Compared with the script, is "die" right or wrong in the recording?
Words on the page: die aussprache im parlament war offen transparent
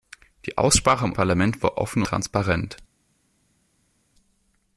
right